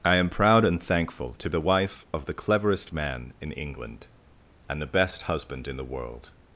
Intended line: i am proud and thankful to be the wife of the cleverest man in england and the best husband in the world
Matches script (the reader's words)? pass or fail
fail